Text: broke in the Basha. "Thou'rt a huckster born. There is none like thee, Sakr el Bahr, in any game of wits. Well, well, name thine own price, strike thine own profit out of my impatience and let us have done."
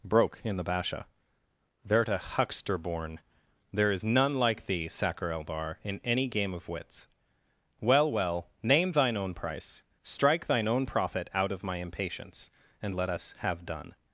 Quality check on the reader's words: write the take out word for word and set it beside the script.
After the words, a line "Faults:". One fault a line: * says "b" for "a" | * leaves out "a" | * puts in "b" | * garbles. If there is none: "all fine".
broke in the Basha. "Thou'rt a huckster born. There is none like thee, Sakr el Bahr, in any game of wits. Well, well, name thine own price, strike thine own profit out of my impatience and let us have done."
Faults:
all fine